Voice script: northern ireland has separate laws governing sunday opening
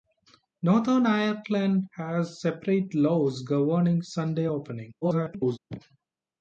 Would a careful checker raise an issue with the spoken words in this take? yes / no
yes